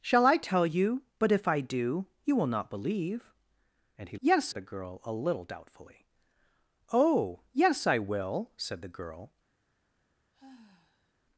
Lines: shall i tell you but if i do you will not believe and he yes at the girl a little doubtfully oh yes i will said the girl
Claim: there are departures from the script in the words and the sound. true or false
true